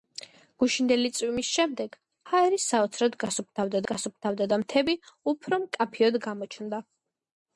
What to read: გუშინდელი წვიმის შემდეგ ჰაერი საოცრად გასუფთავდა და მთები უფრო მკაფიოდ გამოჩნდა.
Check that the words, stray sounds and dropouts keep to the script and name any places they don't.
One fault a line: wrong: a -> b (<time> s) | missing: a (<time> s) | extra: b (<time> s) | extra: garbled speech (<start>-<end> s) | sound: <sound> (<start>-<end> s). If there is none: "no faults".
extra: გასუფთავდა (3.9 s)